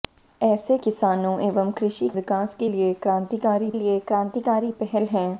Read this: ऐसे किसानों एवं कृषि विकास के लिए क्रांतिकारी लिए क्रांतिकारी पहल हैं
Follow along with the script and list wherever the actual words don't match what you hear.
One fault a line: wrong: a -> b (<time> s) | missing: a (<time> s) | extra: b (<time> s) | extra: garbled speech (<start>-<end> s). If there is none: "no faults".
no faults